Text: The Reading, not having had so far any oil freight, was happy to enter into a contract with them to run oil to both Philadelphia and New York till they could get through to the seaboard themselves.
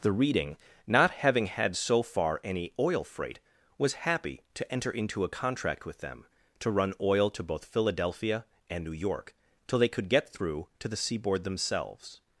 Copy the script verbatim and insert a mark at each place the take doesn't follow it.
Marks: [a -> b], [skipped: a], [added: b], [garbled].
The Reading, not having had so far any oil freight, was happy to enter into a contract with them to run oil to both Philadelphia and New York till they could get through to the seaboard themselves.